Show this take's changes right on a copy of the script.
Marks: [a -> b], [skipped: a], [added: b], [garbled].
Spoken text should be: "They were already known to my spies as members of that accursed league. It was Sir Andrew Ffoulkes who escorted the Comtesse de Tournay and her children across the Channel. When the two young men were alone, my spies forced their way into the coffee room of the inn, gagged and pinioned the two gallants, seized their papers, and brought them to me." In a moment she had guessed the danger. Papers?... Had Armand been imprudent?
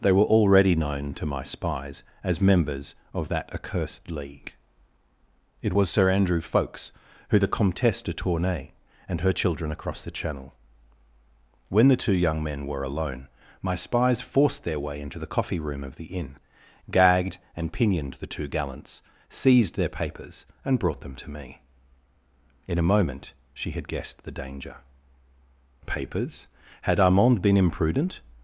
"They were already known to my spies as members of that accursed league. It was Sir Andrew Ffoulkes who [skipped: escorted] the Comtesse de Tournay and her children across the Channel. When the two young men were alone, my spies forced their way into the coffee room of the inn, gagged and pinioned the two gallants, seized their papers, and brought them to me." In a moment she had guessed the danger. Papers?... Had Armand been imprudent?